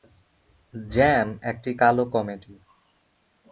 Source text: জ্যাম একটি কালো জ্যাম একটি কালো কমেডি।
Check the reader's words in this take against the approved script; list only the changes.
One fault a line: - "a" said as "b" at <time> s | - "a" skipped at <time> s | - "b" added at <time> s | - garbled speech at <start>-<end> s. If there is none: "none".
- "জ্যাম একটি কালো" skipped at 2.0 s